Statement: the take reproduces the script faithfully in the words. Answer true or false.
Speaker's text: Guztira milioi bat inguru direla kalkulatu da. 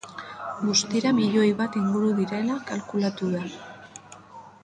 true